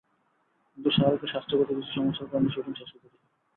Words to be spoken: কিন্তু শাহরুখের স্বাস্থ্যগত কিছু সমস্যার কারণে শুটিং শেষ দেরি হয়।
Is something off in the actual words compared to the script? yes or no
no